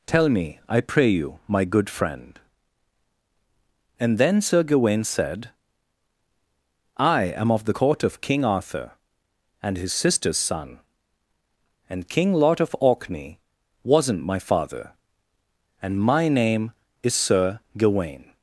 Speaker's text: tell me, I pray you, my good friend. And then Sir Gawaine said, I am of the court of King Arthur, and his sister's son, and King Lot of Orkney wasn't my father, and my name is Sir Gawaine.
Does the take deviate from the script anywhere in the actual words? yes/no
no